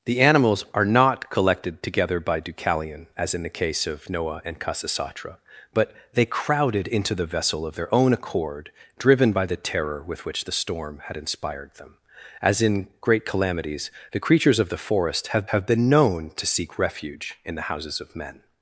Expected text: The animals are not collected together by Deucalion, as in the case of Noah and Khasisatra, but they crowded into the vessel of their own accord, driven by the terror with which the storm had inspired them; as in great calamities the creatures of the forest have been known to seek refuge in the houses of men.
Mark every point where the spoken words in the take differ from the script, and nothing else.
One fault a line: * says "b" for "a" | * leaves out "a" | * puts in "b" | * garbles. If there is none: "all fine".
* puts in "have"